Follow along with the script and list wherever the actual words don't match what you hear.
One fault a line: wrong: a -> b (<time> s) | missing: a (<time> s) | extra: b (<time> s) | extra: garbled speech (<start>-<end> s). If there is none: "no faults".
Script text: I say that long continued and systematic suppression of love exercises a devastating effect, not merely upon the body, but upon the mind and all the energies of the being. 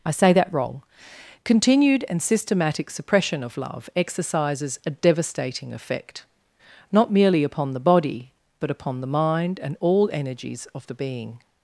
wrong: long -> wrong (0.5 s)
missing: the (10.1 s)